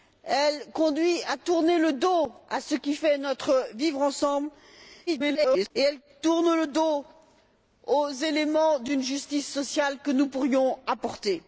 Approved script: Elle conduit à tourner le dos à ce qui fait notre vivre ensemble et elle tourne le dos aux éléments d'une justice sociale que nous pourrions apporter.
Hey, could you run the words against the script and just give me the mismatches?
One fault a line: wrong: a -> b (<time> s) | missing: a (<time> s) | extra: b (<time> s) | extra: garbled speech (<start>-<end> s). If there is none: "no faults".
extra: garbled speech (5.1-5.7 s)